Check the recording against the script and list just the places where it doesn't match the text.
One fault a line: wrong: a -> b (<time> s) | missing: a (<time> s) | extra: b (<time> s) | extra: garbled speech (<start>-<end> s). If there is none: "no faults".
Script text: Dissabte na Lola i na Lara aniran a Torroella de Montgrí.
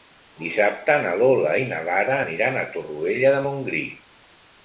no faults